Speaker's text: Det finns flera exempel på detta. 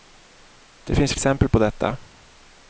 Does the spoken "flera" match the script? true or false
false